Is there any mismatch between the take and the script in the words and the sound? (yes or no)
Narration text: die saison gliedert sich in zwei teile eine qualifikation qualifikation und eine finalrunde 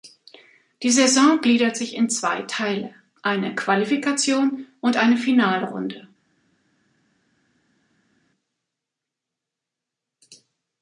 yes